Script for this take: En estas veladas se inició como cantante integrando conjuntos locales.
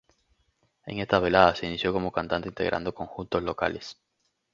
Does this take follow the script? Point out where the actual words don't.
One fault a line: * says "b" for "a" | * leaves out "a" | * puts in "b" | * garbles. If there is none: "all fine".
all fine